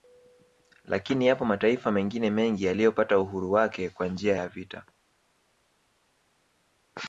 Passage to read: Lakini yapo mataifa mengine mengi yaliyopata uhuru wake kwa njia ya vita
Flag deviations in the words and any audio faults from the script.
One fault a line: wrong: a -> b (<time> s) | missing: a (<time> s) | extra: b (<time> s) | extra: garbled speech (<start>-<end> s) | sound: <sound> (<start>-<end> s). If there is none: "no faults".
no faults